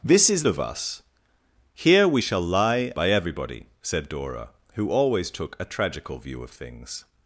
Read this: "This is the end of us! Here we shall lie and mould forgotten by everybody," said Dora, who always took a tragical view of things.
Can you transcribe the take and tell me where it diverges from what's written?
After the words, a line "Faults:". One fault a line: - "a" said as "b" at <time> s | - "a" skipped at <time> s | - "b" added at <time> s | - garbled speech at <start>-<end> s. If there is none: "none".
"This is of us! Here we shall lie by everybody," said Dora, who always took a tragical view of things.
Faults:
- "the end" skipped at 0.4 s
- "and mould forgotten" skipped at 2.9 s